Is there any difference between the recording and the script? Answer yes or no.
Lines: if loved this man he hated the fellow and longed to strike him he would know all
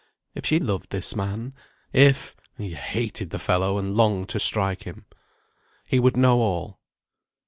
yes